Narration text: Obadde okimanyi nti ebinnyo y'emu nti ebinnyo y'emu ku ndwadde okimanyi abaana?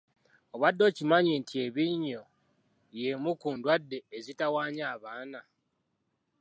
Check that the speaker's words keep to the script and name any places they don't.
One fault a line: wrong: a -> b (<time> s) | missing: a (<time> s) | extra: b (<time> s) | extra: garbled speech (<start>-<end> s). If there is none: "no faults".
missing: nti ebinnyo y'emu (3.3 s)
wrong: okimanyi -> ezitawaanya (4.2 s)